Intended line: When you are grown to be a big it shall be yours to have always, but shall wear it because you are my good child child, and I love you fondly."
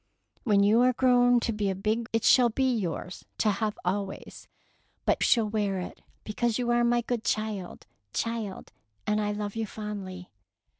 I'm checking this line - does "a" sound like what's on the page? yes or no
yes